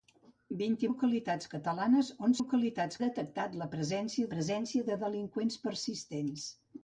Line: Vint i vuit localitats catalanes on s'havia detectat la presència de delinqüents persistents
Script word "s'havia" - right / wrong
wrong